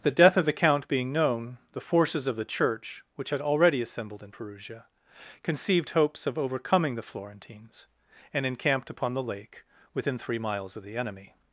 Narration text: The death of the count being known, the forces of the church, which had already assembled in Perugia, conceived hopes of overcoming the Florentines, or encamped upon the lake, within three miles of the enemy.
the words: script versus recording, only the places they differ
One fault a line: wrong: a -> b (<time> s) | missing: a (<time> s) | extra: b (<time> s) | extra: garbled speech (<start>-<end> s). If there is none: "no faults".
wrong: or -> and (8.3 s)